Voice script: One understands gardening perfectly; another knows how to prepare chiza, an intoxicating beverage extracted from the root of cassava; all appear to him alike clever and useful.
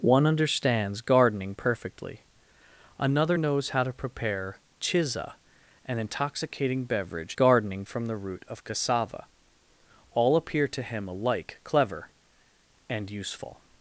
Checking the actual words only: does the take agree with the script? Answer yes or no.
no